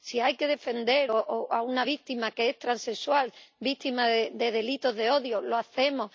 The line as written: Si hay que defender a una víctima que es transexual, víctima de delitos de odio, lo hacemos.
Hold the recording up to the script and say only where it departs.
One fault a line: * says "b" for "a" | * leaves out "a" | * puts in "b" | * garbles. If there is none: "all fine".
all fine